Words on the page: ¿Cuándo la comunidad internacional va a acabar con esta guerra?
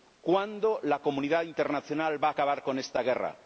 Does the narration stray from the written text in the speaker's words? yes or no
no